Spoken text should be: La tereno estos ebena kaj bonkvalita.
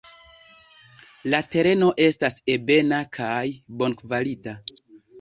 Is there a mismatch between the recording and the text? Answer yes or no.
yes